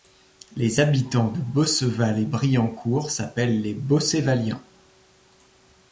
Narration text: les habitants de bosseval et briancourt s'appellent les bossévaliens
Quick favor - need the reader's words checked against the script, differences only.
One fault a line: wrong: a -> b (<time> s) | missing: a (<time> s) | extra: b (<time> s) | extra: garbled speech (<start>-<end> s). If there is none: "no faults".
no faults